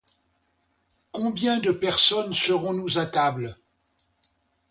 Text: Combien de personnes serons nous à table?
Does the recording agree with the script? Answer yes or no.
yes